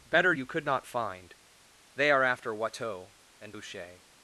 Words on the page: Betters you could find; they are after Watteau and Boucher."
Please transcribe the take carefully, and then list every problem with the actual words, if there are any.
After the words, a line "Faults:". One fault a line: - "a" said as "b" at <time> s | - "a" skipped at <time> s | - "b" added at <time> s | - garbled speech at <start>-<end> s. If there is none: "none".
Better you could not find; they are after Watteau and Boucher."
Faults:
- "Betters" said as "Better" at 0.1 s
- "not" added at 0.6 s